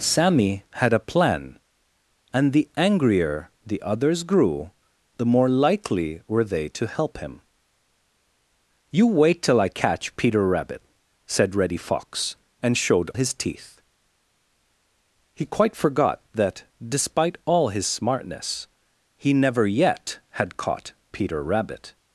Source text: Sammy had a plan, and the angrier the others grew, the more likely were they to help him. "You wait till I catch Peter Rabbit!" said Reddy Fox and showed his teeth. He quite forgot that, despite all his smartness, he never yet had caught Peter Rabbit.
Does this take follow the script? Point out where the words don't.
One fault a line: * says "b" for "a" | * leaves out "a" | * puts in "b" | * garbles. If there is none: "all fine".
all fine